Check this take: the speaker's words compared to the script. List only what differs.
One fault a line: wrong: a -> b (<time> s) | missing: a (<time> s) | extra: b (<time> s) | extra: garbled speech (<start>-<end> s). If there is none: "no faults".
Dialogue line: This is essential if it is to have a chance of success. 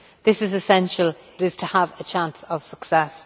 missing: if (1.1 s)